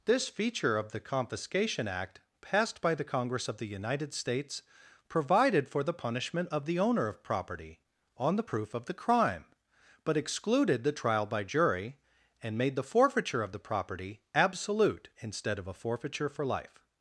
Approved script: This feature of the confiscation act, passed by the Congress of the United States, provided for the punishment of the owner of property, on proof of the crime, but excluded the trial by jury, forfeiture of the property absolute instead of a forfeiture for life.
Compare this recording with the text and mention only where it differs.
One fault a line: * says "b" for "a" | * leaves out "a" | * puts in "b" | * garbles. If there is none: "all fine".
* puts in "the"
* puts in "and made the"